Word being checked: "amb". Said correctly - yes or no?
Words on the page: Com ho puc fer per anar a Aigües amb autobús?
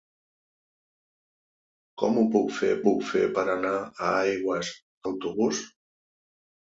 no